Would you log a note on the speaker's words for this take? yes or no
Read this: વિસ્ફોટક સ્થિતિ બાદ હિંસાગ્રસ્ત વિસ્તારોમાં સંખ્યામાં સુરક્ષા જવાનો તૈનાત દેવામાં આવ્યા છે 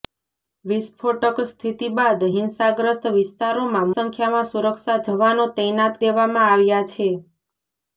no